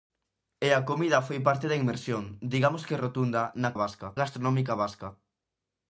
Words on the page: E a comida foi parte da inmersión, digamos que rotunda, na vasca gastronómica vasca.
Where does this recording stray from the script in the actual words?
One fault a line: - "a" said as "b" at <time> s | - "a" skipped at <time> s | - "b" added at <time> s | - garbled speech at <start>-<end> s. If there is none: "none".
none